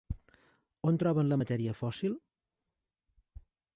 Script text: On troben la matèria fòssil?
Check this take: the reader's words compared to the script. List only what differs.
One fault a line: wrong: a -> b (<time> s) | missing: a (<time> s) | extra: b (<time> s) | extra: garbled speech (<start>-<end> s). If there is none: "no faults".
no faults